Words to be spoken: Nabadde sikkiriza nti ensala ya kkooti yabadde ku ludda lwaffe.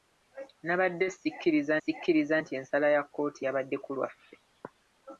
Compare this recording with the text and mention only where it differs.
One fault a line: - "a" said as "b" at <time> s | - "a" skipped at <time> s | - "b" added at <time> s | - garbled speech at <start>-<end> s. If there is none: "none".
- "sikkiriza" added at 1.8 s
- "ludda" skipped at 3.9 s